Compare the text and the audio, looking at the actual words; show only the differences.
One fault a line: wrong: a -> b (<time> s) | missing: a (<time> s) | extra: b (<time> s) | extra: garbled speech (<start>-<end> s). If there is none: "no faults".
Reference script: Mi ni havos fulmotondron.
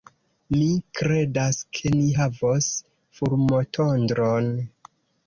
extra: kredas ke (1.0 s)